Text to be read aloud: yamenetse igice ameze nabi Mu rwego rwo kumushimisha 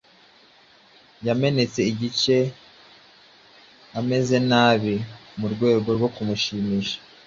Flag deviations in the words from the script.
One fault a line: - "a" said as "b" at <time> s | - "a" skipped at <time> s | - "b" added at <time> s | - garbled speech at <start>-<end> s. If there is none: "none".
none